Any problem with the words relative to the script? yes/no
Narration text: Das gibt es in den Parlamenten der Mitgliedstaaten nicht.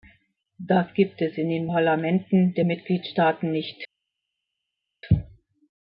no